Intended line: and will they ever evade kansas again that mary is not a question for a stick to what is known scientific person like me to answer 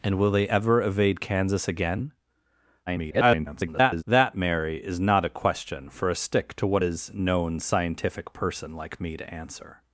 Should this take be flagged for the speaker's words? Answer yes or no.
yes